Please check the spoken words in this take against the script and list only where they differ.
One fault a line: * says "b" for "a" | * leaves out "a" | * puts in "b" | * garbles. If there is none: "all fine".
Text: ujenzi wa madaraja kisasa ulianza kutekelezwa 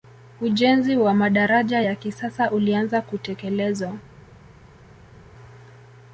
* puts in "ya"